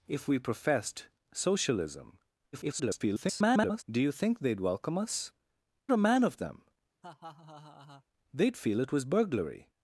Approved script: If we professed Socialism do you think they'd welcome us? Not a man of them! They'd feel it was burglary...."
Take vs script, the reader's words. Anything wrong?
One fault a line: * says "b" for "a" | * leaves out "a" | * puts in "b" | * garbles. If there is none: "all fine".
* garbles
* leaves out "Not"